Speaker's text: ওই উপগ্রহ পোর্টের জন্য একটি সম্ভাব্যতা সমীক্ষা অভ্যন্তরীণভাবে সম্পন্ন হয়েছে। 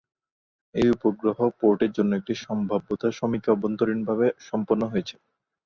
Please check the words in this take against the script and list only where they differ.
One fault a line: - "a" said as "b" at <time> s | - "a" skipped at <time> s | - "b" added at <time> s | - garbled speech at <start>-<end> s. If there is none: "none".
- "ওই" said as "এই" at 0.8 s